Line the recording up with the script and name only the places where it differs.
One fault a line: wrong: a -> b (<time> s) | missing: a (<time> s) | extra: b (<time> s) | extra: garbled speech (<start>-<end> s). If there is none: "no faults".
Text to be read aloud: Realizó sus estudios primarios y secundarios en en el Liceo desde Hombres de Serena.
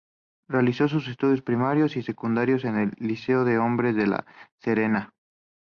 missing: en (2.8 s)
wrong: desde -> de (3.5 s)
extra: La (4.1 s)